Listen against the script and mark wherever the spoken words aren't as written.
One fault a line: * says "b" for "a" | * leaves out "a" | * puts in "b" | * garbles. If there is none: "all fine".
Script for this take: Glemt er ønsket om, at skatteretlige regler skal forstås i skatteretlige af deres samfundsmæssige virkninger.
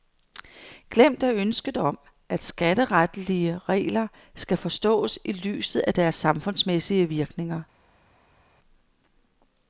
* says "lyset" for "skatteretlige"